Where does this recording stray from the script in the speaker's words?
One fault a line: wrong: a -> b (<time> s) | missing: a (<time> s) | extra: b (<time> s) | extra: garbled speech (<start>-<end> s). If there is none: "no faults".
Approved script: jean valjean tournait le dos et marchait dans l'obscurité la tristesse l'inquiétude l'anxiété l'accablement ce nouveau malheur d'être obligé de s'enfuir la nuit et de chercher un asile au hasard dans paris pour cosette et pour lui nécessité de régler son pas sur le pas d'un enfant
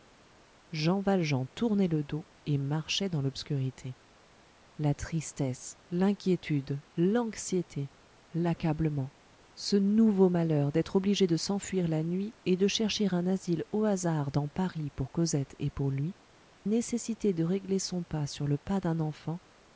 no faults